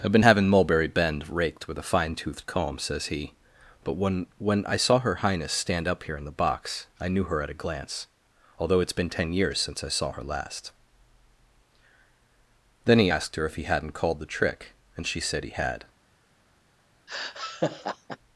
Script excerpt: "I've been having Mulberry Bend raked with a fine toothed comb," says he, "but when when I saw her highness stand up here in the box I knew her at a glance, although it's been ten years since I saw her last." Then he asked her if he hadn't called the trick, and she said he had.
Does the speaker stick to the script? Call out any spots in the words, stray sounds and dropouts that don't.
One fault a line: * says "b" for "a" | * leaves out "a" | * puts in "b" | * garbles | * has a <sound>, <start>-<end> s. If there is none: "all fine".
* has a laugh, 17.1-18.2 s